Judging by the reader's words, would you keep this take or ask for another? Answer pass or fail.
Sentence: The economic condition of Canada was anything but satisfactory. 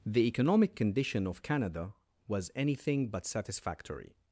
pass